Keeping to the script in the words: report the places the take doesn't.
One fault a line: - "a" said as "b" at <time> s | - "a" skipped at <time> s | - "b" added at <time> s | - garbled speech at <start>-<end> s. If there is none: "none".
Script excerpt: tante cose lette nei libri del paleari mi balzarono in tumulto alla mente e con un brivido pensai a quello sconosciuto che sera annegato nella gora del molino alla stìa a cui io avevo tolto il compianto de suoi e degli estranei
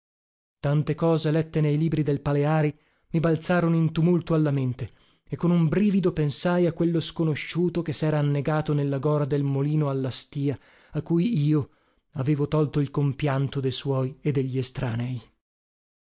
none